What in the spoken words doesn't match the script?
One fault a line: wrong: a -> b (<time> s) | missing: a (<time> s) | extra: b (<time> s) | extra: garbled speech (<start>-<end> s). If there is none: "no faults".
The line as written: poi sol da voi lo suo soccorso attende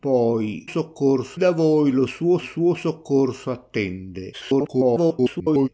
wrong: sol -> soccorso (0.6 s)
extra: suo (2.4 s)
extra: garbled speech (4.3-5.7 s)